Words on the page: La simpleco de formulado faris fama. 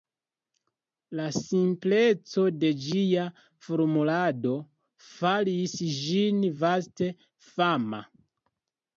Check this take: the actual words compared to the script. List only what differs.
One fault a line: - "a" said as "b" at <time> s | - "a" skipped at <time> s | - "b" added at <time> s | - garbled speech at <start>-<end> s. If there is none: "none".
- "ĝia" added at 2.9 s
- "ĝin vaste" added at 6.0 s